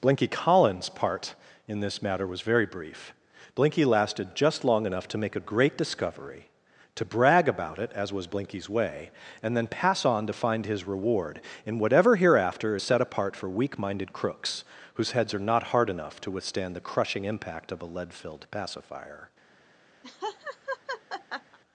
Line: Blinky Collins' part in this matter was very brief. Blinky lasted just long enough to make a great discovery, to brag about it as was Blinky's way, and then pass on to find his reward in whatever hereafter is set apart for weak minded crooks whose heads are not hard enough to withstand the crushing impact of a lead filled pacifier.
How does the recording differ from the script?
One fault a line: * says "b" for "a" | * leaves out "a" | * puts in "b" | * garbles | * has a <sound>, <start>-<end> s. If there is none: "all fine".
* has a laugh, 20.0-21.6 s